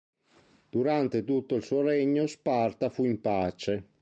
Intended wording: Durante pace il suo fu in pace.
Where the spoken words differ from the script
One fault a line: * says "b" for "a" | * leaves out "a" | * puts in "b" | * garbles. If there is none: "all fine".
* says "tutto" for "pace"
* puts in "regno Sparta"